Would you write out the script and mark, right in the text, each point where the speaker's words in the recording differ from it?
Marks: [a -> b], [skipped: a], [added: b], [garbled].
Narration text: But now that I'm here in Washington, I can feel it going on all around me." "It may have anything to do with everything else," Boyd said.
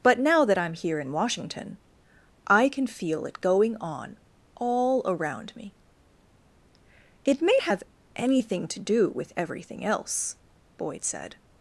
But now that I'm here in Washington, I can feel it going on all around me." "It may have anything to do with everything else," Boyd said.